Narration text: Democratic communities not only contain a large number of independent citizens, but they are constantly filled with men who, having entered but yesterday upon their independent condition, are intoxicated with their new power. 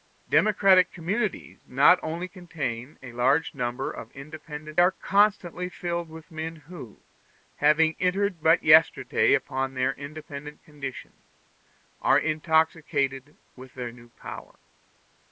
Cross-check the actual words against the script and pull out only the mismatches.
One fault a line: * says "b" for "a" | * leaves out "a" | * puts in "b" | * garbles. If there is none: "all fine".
* leaves out "citizens but they"